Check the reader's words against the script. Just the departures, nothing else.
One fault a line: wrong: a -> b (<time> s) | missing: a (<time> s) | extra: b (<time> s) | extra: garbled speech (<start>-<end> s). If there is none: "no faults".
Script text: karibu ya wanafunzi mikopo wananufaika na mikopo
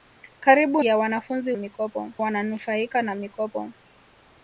no faults